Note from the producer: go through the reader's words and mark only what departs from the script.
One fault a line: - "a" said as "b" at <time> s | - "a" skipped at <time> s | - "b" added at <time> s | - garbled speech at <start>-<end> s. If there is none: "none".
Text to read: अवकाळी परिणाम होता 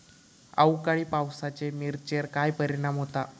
- "पावसाचे मिरचेर काय" added at 1.0 s